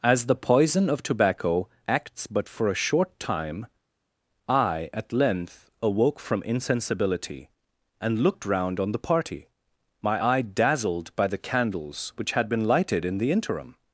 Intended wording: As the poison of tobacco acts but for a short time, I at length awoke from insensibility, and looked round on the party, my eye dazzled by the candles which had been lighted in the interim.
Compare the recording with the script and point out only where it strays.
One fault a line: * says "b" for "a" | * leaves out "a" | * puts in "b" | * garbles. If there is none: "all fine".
all fine